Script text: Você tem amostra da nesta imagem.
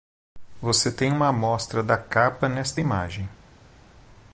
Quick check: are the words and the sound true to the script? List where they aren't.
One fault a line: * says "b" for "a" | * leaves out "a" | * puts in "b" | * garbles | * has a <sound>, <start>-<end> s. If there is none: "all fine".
* puts in "uma"
* puts in "capa"